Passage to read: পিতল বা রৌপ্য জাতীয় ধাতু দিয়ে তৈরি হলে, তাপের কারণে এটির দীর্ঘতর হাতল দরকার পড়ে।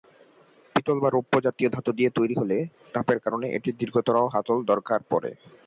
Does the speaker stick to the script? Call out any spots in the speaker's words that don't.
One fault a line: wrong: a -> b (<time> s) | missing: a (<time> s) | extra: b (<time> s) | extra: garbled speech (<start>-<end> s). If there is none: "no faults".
no faults